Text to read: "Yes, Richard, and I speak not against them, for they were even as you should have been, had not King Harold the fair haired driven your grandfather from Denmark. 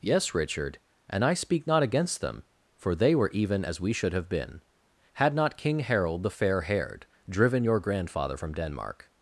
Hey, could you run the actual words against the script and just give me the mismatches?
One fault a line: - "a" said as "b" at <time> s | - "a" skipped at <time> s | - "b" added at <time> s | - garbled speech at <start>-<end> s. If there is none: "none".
- "you" said as "we" at 3.8 s